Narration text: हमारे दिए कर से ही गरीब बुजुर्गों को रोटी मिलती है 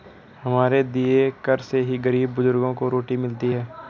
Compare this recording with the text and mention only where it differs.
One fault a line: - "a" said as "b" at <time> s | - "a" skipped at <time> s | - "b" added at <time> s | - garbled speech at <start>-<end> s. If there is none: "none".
none